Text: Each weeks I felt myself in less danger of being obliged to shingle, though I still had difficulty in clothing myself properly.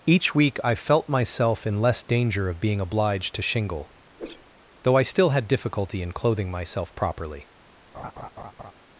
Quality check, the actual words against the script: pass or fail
fail